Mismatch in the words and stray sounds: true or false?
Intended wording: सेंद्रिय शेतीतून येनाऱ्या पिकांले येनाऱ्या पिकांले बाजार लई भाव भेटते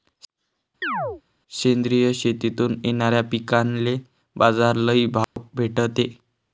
true